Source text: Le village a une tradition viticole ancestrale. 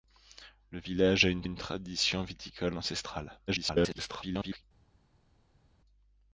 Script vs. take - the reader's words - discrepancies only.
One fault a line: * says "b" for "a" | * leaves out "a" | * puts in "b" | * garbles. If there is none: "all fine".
* puts in "une"
* garbles